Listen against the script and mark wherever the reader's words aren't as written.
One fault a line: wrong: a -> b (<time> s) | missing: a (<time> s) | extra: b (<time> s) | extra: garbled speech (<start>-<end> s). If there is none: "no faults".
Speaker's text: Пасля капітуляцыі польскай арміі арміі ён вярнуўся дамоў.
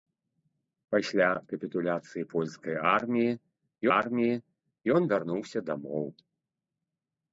no faults